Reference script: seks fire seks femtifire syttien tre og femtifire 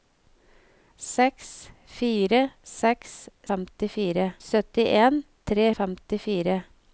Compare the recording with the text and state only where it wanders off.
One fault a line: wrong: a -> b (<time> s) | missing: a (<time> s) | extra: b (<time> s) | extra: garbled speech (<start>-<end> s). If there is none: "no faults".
no faults